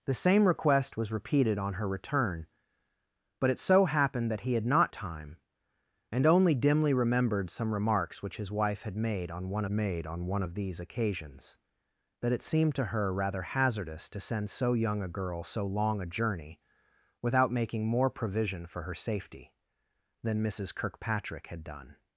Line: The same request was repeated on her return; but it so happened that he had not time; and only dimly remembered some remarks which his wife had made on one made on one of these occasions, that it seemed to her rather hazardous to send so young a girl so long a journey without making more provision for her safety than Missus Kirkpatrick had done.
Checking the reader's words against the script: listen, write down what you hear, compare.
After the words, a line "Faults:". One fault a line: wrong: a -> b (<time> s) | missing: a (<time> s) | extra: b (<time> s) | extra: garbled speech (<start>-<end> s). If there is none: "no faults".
The same request was repeated on her return; but it so happened that he had not time; and only dimly remembered some remarks which his wife had made on one made on one of these occasions, that it seemed to her rather hazardous to send so young a girl so long a journey without making more provision for her safety than Missus Kirkpatrick had done.
Faults:
no faults